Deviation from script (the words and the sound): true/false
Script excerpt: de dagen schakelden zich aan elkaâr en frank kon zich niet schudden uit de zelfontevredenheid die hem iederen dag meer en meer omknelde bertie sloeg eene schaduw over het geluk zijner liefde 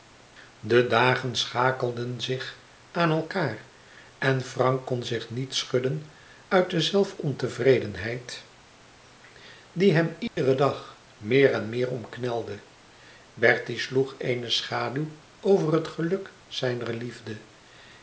true